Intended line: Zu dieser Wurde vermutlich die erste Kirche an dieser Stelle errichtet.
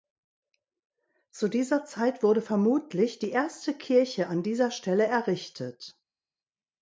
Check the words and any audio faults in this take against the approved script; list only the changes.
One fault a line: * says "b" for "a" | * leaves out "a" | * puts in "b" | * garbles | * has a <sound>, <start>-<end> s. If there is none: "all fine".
* puts in "Zeit"